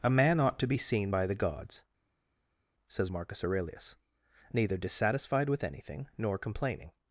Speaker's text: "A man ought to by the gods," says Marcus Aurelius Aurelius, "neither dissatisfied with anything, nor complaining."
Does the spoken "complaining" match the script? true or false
true